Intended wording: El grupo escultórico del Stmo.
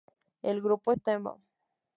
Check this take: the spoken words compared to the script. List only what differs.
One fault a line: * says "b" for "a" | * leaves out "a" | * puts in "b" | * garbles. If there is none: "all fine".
* leaves out "escultórico del"